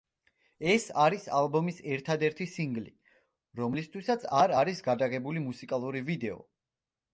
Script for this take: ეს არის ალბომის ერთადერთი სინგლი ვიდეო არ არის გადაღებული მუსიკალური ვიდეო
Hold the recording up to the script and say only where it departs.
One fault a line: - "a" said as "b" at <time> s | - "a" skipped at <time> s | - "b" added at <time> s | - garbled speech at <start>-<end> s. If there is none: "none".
- "ვიდეო" said as "რომლისთვისაც" at 3.6 s